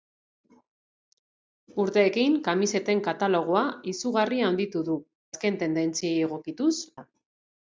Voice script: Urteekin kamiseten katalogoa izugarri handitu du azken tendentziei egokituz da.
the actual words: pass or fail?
pass